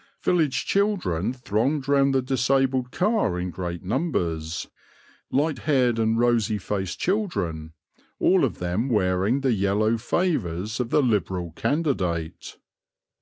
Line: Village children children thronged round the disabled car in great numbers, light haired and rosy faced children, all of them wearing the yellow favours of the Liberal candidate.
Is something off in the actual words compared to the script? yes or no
yes